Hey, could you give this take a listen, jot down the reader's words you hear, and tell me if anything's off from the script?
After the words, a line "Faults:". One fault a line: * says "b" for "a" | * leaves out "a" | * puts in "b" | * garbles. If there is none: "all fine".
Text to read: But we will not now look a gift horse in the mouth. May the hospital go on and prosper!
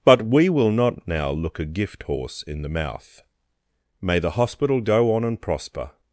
But we will not now look a gift horse in the mouth. May the hospital go on and prosper!
Faults:
all fine